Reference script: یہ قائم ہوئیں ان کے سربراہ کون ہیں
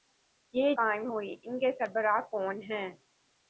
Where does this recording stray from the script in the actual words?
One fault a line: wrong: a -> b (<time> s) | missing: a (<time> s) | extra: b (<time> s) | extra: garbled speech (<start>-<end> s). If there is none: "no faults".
no faults